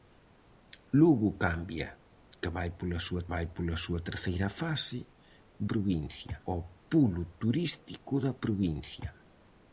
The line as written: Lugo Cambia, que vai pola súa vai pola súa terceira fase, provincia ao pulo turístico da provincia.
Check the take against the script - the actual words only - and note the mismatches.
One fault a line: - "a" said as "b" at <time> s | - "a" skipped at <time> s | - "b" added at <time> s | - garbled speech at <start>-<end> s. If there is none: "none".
none